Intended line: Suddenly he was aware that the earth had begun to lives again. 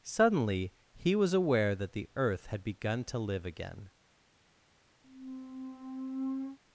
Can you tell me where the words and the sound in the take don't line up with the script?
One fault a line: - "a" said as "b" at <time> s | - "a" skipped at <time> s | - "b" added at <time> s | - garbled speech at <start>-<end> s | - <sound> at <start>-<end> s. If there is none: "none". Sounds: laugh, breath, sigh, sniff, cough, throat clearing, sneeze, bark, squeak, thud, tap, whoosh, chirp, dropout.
- "lives" said as "live" at 3.2 s
- squeak at 5.0-6.6 s